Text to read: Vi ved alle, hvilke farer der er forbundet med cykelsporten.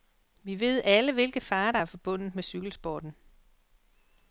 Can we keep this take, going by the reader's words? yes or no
yes